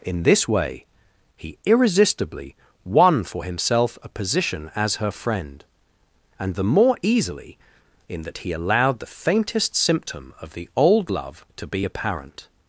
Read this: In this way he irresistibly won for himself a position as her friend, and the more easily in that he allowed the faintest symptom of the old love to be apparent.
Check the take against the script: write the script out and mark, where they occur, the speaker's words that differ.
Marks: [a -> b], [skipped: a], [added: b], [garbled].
In this way he irresistibly won for himself a position as her friend, and the more easily in that he allowed the faintest symptom of the old love to be apparent.